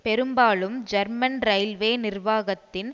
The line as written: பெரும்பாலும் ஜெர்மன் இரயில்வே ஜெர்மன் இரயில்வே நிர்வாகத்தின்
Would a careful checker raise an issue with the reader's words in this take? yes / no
yes